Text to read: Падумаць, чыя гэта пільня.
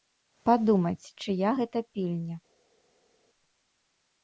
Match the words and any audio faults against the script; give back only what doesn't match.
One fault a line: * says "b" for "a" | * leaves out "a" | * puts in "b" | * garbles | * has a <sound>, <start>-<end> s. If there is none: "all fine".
all fine